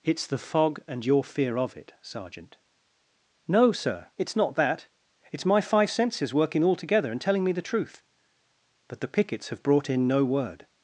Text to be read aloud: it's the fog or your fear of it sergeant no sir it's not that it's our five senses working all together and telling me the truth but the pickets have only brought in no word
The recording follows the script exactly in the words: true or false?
false